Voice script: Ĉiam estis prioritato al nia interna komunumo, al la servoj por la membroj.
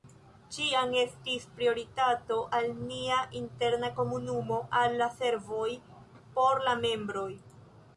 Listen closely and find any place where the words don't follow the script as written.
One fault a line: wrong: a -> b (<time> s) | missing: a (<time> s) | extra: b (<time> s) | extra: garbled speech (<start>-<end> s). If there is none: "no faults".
no faults